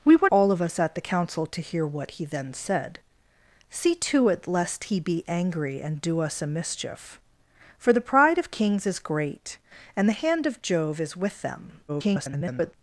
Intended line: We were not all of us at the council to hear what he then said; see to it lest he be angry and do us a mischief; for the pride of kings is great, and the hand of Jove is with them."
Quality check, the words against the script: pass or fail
fail